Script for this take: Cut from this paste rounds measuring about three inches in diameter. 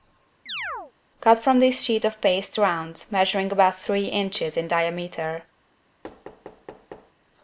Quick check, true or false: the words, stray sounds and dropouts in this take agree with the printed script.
false